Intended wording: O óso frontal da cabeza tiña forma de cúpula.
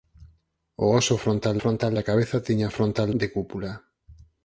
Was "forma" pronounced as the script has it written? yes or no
no